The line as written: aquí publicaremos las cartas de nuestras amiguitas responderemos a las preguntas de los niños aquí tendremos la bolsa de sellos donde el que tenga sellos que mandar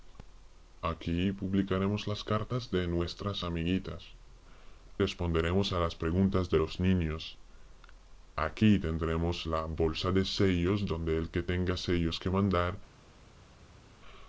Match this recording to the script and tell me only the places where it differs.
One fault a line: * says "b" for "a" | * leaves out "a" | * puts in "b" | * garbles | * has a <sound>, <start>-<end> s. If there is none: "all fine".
all fine